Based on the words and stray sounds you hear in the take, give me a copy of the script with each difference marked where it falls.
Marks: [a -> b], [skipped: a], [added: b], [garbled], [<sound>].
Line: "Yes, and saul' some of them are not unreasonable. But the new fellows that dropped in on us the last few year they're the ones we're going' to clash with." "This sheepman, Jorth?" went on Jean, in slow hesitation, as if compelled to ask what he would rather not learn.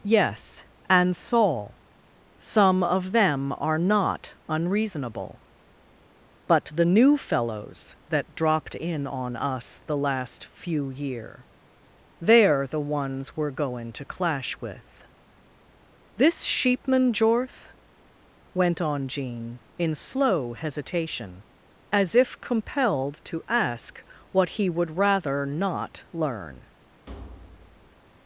"Yes, and saul' some of them are not unreasonable. But the new fellows that dropped in on us the last few year they're the ones we're going' to clash with." "This sheepman, Jorth?" went on Jean, in slow hesitation, as if compelled to ask what he would rather not learn. [thud]